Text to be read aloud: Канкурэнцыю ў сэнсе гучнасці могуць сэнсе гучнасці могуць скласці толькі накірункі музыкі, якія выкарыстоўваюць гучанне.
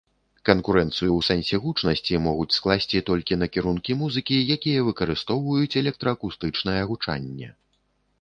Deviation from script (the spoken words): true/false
true